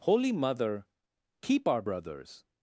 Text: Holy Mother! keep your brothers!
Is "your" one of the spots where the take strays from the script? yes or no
yes